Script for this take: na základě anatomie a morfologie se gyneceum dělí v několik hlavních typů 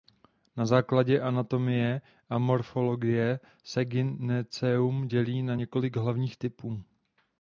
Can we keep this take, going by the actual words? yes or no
no